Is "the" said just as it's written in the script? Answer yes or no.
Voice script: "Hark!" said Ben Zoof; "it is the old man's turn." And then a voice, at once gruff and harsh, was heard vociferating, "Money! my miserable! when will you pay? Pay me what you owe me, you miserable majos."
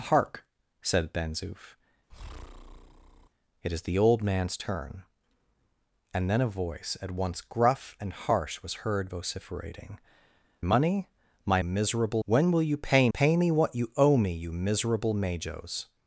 yes